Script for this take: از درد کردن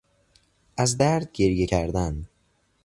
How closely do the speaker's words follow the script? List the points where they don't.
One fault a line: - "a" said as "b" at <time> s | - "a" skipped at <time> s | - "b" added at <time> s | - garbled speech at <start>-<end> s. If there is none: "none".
- "گریه" added at 1.3 s